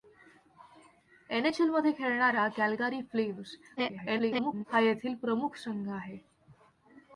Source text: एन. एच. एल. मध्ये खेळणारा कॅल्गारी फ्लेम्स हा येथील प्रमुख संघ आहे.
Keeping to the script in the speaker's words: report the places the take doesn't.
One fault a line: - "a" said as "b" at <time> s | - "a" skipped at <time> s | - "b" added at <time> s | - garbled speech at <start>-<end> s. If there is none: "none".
- garbled speech at 3.8-4.6 s